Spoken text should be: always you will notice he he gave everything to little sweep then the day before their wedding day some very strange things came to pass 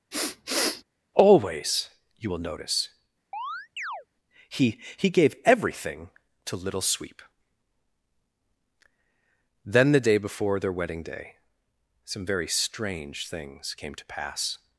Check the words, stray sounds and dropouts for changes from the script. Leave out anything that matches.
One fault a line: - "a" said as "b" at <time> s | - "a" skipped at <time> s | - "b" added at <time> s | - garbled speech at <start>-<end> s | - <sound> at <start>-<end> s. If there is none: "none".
- sniff at 0.1-0.8 s
- chirp at 3.3-4.1 s